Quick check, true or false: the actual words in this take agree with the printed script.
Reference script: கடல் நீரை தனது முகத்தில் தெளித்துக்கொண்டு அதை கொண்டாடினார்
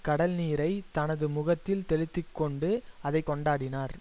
true